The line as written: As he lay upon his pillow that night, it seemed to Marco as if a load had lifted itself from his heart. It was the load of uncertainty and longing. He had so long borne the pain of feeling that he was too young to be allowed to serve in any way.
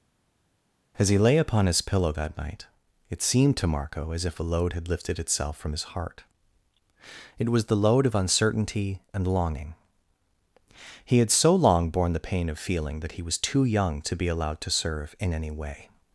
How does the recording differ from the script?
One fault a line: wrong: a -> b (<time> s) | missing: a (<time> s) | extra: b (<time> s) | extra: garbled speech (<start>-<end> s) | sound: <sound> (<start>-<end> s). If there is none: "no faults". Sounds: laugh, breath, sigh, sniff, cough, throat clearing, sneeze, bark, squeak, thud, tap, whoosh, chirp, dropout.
no faults